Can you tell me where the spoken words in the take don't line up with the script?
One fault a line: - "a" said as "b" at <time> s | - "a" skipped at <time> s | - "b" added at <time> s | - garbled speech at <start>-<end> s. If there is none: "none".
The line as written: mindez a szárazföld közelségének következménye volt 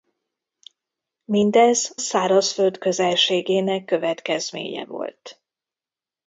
- "a" skipped at 1.9 s